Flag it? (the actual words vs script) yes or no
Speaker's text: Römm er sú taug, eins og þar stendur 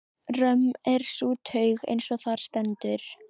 no